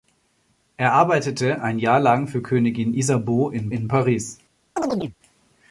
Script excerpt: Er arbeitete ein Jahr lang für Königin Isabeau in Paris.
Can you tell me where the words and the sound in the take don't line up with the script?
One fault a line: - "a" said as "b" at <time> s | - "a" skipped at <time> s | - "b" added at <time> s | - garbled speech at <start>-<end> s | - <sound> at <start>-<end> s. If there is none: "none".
- "in" added at 3.7 s
- chirp at 4.8-5.2 s